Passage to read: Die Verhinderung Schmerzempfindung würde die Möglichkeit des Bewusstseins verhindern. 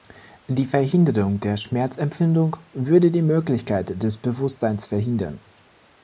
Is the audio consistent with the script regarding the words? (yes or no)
no